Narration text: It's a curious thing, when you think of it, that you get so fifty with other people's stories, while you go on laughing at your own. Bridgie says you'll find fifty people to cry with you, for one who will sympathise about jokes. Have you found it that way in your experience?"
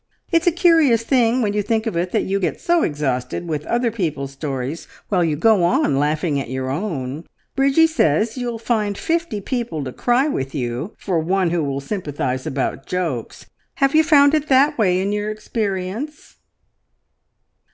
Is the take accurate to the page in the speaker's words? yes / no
no